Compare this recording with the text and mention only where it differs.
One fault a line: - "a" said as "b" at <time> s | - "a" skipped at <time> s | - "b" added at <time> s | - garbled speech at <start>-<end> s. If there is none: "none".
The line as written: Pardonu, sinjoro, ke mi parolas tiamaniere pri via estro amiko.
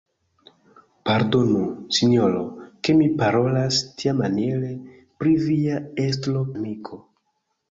none